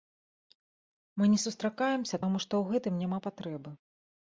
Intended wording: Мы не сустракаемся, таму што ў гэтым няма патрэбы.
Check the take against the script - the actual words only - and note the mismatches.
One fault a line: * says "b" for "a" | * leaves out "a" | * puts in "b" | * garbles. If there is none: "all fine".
all fine